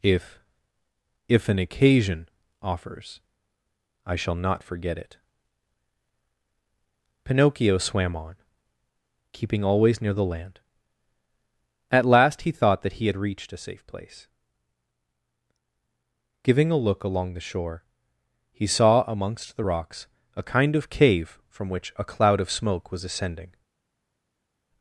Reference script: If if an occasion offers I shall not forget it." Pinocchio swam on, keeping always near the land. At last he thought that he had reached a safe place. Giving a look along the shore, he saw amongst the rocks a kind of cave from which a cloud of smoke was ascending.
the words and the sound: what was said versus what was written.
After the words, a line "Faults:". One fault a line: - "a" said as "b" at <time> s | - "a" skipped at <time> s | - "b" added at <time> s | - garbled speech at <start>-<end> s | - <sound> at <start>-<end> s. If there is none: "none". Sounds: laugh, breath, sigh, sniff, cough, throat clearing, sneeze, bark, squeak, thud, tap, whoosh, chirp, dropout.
If if an occasion offers I shall not forget it." Pinocchio swam on, keeping always near the land. At last he thought that he had reached a safe place. Giving a look along the shore, he saw amongst the rocks a kind of cave from which a cloud of smoke was ascending.
Faults:
none